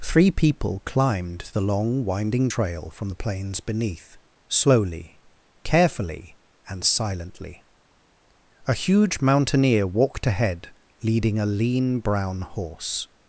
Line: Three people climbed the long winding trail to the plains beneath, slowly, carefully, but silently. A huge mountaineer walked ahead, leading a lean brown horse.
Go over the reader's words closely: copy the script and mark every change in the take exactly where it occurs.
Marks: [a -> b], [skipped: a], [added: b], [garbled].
Three people climbed the long winding trail [to -> from] the plains beneath, slowly, carefully, [but -> and] silently. A huge mountaineer walked ahead, leading a lean brown horse.